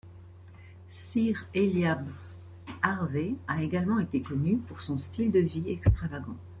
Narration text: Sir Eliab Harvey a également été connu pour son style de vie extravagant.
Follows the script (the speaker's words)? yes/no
yes